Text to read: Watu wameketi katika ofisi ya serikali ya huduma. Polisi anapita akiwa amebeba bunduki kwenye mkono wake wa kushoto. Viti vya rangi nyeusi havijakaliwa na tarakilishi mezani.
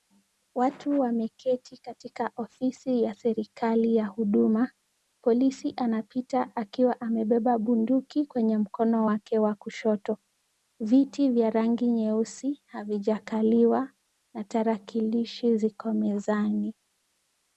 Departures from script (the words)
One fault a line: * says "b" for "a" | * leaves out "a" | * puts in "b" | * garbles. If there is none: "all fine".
* puts in "ziko"